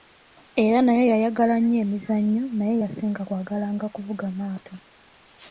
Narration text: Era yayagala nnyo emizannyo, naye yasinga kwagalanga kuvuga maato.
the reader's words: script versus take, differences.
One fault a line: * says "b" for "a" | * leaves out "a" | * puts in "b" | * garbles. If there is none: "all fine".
* puts in "naye"